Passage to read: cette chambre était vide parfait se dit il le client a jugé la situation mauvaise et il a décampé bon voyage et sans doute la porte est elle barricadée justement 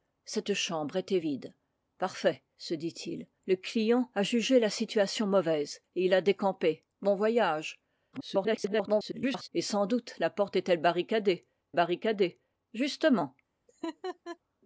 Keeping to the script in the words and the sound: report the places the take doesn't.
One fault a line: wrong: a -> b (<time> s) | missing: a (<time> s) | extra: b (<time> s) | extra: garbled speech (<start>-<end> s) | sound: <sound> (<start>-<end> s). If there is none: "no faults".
extra: garbled speech (8.1-9.5 s)
extra: barricadée (11.7 s)
sound: laugh (13.7-14.4 s)